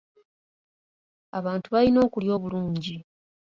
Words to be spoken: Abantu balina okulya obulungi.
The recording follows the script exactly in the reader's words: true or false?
true